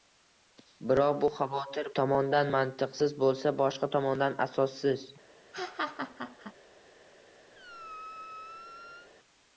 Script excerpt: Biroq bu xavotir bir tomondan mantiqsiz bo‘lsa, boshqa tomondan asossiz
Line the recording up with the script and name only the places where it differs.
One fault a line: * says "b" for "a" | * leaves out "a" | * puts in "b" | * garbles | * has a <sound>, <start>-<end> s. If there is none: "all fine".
* leaves out "bir"
* has a laugh, 5.5-6.5 s
* has a squeak, 7.5-9.1 s